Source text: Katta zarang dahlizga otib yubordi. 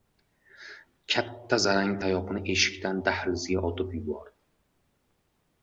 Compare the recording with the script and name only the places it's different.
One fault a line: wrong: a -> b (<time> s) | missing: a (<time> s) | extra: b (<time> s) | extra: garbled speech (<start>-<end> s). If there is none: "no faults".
extra: tayoqni eshikdan (2.0 s)